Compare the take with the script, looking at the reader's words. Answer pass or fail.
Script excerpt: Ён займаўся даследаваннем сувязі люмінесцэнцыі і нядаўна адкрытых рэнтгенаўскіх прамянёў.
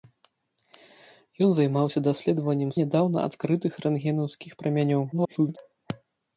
fail